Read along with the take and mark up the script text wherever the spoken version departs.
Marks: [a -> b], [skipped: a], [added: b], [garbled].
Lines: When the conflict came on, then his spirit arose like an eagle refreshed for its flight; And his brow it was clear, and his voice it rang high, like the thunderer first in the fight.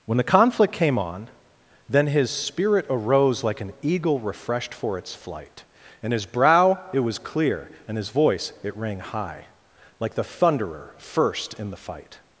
When the conflict came on, then his spirit arose like an eagle refreshed for its flight; And his brow it was clear, and his voice it rang high, like the thunderer first in the fight.